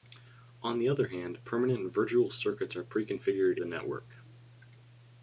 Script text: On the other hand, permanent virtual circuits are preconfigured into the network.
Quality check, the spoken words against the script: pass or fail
fail